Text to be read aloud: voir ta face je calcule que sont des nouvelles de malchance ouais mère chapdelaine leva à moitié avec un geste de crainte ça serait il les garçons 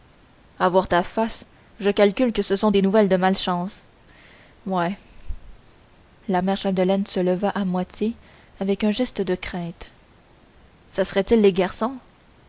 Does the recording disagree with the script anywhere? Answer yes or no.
yes